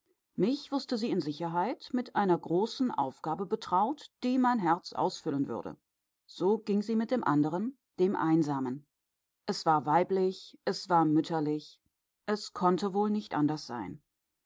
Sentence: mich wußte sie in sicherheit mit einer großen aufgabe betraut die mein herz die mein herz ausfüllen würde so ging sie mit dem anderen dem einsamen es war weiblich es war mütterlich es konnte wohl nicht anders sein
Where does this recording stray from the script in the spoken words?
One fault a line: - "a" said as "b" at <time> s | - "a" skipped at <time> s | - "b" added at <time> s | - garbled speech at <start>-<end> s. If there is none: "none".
- "die mein herz" skipped at 4.9 s